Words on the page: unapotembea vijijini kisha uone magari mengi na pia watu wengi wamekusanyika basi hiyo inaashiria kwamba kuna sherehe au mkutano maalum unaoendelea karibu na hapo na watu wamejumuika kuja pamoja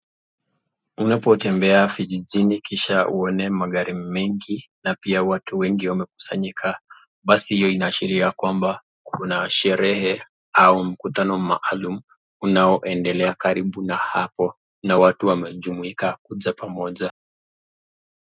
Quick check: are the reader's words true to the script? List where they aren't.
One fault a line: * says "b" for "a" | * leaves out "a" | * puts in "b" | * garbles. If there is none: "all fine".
all fine